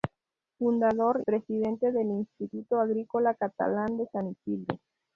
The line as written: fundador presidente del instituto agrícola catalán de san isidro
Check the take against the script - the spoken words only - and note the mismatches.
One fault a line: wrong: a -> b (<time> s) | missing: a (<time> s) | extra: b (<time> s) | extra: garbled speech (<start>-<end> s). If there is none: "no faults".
no faults